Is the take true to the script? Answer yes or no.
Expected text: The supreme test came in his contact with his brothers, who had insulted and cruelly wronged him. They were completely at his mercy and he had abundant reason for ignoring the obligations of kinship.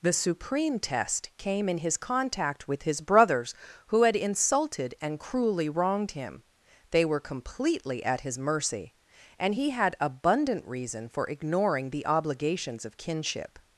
yes